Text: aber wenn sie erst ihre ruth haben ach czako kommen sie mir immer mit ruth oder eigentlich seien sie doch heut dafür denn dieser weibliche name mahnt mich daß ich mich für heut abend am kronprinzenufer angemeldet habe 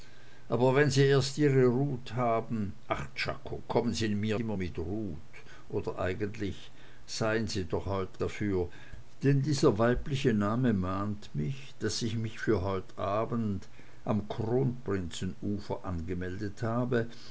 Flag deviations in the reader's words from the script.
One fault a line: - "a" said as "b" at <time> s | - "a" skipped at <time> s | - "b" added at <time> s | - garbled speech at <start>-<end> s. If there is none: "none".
none